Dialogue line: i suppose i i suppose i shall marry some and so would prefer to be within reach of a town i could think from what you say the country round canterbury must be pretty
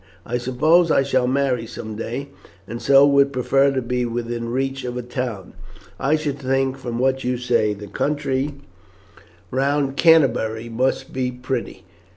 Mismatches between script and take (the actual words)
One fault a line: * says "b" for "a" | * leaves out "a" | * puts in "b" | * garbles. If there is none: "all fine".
* leaves out "i suppose i"
* puts in "day"
* says "should" for "could"